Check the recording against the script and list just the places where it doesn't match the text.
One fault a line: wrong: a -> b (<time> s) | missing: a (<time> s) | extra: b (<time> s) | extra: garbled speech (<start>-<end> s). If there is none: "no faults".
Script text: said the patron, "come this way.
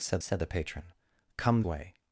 extra: said (0.2 s)
missing: this (1.6 s)